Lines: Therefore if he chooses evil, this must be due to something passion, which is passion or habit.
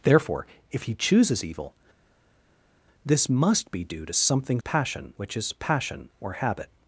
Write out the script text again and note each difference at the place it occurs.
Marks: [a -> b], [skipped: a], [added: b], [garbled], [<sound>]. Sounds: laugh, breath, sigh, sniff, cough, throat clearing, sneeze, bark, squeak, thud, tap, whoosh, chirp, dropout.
Therefore if he chooses evil, this must be due to something passion, which is passion or habit.